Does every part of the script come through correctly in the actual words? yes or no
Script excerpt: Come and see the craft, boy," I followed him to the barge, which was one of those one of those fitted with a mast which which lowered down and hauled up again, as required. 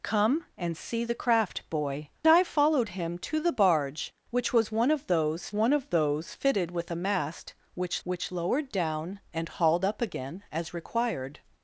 yes